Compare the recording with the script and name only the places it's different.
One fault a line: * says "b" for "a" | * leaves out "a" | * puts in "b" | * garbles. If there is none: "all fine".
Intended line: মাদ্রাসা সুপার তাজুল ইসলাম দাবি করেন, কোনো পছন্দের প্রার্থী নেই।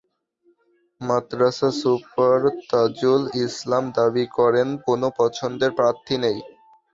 all fine